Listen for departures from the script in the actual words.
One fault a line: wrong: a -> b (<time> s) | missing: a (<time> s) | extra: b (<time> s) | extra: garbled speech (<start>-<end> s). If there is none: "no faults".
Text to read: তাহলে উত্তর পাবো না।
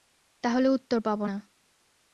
no faults